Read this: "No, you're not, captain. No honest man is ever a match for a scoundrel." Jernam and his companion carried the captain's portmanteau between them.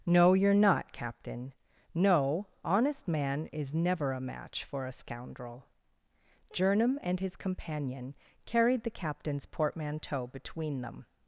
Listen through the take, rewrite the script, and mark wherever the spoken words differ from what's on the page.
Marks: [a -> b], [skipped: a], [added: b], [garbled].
"No, you're not, captain. No honest man is [ever -> never] a match for a scoundrel." Jernam and his companion carried the captain's portmanteau between them.